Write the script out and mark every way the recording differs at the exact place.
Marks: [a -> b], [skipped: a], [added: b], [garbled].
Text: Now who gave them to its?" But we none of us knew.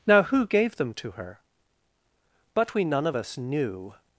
Now who gave them to [its?" -> her] But we none of us knew.